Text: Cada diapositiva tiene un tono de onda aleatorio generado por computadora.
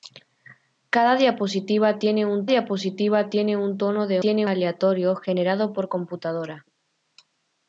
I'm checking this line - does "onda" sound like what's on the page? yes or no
no